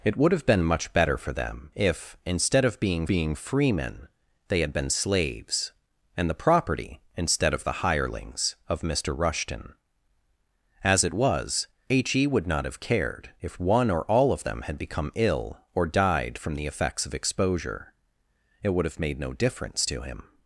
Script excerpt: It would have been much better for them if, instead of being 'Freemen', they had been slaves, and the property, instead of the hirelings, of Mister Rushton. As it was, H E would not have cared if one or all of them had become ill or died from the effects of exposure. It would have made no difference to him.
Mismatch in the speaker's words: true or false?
true